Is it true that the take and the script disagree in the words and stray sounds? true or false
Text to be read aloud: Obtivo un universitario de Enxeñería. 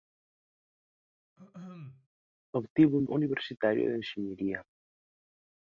true